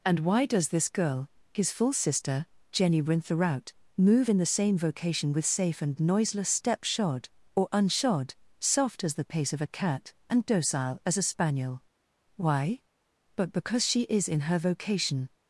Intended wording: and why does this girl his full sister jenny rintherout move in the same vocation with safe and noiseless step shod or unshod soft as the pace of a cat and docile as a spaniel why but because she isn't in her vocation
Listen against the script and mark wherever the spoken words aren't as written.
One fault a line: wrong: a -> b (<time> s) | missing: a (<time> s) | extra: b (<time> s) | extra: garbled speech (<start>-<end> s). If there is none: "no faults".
wrong: isn't -> is (14.0 s)